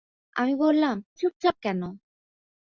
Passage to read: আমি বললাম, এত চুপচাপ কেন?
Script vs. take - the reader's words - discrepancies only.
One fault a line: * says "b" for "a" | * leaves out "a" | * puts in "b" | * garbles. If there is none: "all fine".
* leaves out "এত"